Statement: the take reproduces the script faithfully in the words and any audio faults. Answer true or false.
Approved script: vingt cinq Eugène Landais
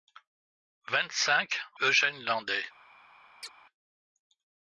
false